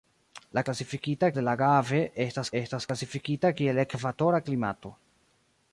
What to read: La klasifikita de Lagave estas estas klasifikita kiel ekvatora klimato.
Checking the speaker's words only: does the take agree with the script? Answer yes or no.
yes